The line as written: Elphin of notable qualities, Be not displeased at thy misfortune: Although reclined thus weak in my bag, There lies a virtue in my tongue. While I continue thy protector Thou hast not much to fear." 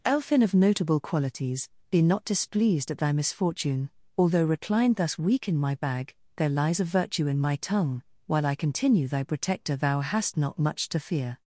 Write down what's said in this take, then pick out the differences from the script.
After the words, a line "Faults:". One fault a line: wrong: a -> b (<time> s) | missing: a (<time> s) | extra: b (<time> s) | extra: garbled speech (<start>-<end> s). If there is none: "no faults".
Elphin of notable qualities, Be not displeased at thy misfortune: Although reclined thus weak in my bag, There lies a virtue in my tongue. While I continue thy protector Thou hast not much to fear."
Faults:
no faults